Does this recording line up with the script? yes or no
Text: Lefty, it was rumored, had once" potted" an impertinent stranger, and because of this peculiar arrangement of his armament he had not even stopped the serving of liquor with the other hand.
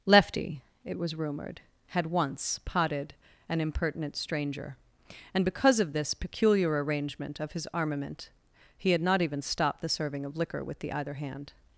no